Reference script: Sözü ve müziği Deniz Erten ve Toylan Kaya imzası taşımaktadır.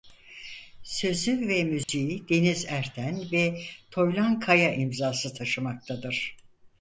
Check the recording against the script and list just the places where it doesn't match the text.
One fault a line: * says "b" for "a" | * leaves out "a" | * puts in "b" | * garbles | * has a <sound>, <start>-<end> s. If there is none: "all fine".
* has a dropout, 1.8-1.9 s